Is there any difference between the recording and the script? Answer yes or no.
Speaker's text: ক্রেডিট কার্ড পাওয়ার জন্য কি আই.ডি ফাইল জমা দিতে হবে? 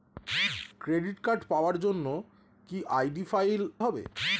yes